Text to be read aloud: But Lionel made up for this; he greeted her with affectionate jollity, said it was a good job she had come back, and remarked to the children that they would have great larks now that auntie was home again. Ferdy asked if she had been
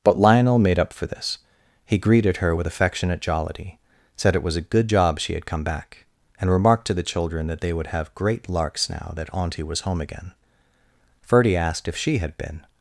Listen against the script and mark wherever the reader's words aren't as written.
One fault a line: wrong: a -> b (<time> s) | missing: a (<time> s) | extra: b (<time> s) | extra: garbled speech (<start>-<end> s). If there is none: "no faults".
no faults